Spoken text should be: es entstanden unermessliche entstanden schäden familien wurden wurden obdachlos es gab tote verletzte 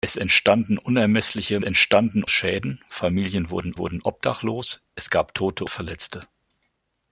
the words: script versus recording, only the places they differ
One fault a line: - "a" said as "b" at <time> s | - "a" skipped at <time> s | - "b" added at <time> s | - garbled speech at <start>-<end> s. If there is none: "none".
none